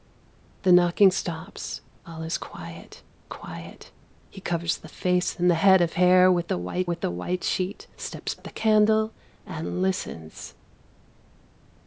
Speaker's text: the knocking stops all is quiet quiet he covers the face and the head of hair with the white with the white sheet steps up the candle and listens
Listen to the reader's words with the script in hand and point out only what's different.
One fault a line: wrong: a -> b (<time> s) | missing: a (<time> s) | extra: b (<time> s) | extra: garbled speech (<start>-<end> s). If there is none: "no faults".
no faults